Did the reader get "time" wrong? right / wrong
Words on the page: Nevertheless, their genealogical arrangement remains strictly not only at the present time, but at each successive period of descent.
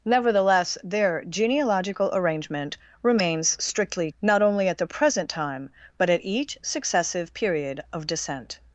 right